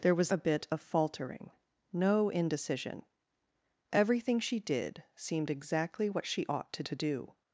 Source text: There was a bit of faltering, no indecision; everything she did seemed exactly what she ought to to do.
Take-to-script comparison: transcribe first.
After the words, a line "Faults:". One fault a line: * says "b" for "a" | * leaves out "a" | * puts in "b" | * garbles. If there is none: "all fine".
There was a bit of faltering, no indecision; everything she did seemed exactly what she ought to to do.
Faults:
all fine